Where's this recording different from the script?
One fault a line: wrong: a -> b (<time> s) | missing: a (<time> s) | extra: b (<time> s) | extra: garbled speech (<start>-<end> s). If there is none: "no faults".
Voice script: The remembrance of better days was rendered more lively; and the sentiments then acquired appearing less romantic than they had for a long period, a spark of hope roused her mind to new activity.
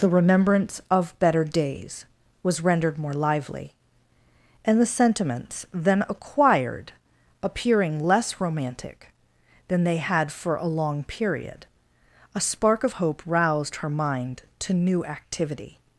no faults